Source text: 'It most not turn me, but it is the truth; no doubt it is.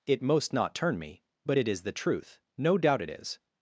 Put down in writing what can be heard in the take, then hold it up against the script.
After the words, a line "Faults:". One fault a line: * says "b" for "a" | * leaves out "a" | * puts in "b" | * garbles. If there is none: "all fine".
'It most not turn me, but it is the truth; no doubt it is.
Faults:
all fine